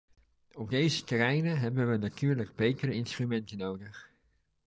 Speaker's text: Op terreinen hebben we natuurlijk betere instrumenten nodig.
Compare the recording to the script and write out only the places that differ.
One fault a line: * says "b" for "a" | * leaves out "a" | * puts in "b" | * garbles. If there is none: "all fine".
* puts in "deze"